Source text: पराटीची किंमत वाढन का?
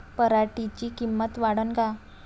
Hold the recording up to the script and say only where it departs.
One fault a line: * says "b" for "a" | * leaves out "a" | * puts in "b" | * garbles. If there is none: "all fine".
all fine